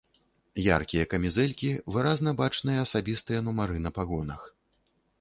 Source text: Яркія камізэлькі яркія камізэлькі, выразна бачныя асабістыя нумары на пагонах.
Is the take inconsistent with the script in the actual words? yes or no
yes